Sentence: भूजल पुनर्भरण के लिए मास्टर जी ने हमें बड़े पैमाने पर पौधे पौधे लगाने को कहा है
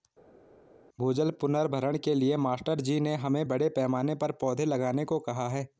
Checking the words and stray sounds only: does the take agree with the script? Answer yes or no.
no